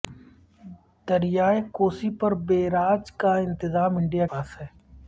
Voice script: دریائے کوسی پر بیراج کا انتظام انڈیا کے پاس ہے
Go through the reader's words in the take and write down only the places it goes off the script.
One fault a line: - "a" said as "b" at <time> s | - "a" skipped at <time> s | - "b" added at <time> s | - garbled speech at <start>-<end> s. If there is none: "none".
- "کے" skipped at 4.3 s